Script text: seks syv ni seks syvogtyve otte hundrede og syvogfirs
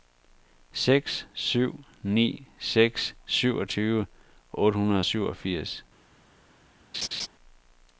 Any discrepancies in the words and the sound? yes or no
yes